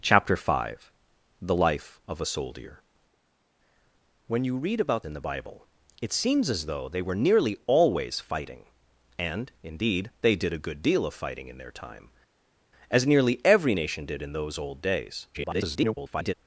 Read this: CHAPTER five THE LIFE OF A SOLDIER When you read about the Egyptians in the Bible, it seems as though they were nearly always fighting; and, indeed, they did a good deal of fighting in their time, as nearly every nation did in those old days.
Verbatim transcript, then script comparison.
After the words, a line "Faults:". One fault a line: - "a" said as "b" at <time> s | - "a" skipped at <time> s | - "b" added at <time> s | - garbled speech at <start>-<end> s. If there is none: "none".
CHAPTER five THE LIFE OF A SOLDIER When you read about in the Bible, it seems as though they were nearly always fighting; and, indeed, they did a good deal of fighting in their time, as nearly every nation did in those old days. [garbled]
Faults:
- "the Egyptians" skipped at 5.0 s
- garbled speech at 15.3-16.3 s